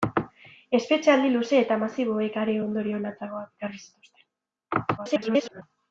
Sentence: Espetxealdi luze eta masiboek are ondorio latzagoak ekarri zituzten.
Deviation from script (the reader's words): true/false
true